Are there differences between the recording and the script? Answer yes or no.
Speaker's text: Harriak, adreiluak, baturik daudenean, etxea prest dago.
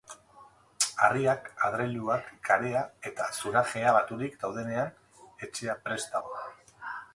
yes